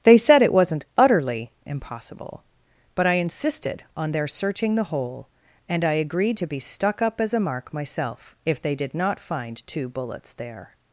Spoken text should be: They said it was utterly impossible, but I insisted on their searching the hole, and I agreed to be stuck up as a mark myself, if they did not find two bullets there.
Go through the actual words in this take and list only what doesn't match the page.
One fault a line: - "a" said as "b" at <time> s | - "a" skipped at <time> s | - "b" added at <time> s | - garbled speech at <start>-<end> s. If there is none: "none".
- "was" said as "wasn't" at 0.5 s